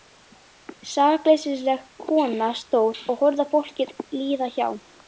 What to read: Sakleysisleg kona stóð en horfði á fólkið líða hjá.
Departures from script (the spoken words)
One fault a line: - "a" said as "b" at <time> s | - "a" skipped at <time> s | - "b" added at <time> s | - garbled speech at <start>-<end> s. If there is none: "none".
- "en" said as "og" at 3.1 s